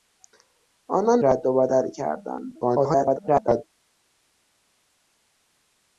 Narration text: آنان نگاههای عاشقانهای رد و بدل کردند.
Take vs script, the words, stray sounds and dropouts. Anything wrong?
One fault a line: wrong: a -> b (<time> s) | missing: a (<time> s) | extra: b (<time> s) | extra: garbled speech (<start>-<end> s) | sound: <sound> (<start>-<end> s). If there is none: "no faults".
missing: نگاههای عاشقانهای (1.2 s)
extra: garbled speech (2.6-3.6 s)